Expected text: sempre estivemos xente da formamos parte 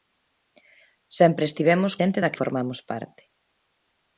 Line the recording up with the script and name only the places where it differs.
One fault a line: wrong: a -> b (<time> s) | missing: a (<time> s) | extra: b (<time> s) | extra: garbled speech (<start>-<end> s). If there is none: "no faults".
no faults